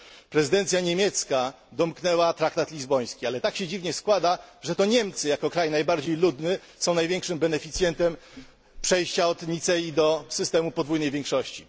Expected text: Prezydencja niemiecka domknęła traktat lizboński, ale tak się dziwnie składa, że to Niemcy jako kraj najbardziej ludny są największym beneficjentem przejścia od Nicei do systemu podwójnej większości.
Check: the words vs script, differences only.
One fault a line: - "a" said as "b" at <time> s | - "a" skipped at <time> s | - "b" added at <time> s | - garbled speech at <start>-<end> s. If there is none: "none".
none